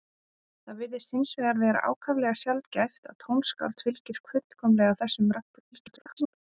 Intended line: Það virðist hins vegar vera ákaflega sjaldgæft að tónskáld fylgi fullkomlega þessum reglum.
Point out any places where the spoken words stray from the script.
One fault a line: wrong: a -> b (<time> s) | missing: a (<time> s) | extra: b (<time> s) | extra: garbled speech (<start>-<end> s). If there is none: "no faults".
extra: garbled speech (5.7-6.3 s)